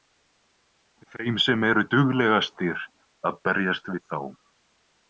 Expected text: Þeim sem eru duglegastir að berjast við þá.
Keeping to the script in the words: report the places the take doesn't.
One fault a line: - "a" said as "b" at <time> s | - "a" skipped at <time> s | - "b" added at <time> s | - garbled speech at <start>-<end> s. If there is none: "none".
none